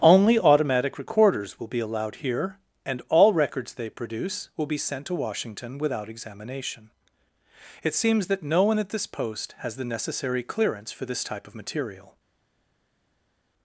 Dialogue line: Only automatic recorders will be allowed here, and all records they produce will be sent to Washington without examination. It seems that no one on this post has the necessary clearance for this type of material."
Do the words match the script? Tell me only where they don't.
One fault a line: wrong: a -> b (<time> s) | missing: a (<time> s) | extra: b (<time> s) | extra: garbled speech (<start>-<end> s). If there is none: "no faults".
wrong: on -> at (8.8 s)